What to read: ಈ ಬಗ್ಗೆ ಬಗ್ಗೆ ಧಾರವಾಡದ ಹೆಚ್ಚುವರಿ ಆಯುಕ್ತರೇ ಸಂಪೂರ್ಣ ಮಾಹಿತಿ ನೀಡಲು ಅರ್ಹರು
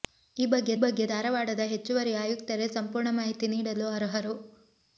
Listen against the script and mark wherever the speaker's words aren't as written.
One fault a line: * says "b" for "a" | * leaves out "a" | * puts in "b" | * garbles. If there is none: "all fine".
all fine